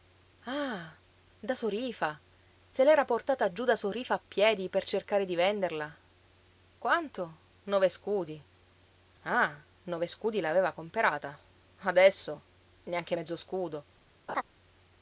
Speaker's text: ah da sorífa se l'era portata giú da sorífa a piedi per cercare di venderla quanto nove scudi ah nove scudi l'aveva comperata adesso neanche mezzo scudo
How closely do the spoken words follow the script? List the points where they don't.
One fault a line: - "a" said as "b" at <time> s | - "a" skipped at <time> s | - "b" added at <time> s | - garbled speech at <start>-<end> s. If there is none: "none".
none